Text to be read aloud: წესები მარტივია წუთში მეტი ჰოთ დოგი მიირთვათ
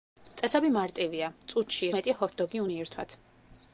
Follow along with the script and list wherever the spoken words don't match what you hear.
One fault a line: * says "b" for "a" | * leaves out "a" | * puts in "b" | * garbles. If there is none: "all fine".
all fine